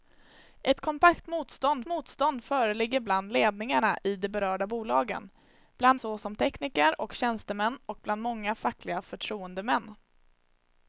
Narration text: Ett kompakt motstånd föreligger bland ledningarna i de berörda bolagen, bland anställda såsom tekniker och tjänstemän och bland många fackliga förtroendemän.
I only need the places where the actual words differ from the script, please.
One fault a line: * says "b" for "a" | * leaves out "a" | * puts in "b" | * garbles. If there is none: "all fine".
* puts in "motstånd"
* leaves out "anställda"